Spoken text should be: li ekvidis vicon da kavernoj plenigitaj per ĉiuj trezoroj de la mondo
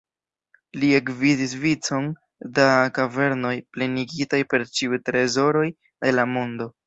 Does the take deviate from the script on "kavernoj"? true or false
false